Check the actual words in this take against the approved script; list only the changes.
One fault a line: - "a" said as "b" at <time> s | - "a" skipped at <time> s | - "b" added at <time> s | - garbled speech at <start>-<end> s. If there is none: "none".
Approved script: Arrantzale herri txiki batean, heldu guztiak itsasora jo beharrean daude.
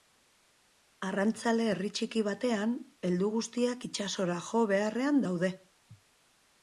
none